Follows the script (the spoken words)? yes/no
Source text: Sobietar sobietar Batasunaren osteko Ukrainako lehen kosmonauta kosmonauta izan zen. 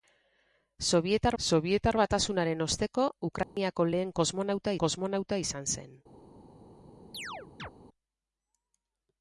yes